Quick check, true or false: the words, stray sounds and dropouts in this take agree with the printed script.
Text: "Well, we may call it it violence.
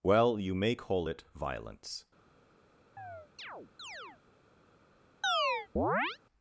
false